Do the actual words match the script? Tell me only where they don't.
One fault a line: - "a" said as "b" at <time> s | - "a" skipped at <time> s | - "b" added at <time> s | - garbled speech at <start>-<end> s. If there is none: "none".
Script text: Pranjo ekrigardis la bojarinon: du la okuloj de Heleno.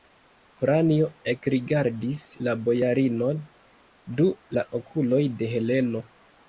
none